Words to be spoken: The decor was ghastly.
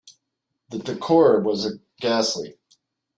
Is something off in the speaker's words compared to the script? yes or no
no